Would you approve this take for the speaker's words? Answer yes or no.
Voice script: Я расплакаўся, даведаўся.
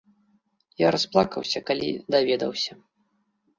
no